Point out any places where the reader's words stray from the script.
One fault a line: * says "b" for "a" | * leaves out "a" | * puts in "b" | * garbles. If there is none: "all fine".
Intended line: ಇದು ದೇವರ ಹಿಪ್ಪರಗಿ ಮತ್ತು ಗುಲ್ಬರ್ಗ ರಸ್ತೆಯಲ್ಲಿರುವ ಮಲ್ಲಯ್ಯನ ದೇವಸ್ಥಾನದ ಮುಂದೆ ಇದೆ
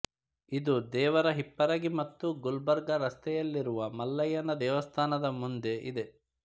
all fine